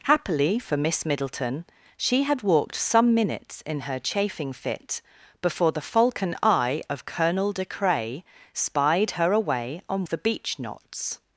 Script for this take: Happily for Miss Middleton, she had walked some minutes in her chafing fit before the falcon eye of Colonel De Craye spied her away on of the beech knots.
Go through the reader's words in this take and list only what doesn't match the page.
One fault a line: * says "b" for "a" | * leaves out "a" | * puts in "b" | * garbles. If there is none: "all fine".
all fine